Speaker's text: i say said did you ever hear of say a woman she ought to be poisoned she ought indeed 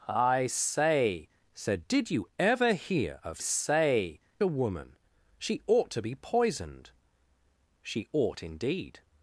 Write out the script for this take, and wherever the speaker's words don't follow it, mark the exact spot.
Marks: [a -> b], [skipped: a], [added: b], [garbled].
i say said did you ever hear of say a woman she ought to be poisoned she ought indeed